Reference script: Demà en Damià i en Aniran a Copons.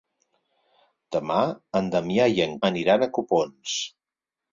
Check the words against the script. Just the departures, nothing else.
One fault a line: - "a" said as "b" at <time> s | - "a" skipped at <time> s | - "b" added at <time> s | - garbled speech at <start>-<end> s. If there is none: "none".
none